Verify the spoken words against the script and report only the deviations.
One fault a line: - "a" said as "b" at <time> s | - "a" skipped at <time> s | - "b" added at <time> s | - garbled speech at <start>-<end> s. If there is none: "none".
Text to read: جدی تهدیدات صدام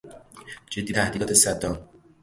none